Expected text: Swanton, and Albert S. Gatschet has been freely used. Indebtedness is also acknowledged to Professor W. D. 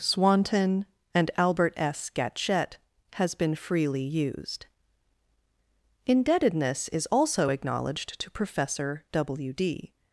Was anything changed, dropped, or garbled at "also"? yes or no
no